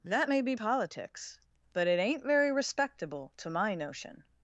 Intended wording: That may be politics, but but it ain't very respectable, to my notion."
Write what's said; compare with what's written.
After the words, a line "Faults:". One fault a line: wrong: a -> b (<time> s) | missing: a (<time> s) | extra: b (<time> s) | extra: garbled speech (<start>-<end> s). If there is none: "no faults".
That may be politics, but it ain't very respectable, to my notion."
Faults:
missing: but (1.9 s)